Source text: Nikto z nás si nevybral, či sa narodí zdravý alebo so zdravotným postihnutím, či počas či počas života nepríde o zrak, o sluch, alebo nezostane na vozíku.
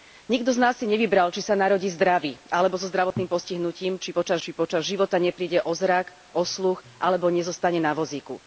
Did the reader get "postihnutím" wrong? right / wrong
right